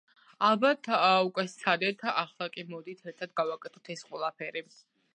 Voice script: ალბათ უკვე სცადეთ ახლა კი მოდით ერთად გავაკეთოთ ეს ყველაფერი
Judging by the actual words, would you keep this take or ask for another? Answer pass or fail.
pass